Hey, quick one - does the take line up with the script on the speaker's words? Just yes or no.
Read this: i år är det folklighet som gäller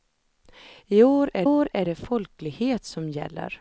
no